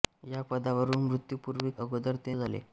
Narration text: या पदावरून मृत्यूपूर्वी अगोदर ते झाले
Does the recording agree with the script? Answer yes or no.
yes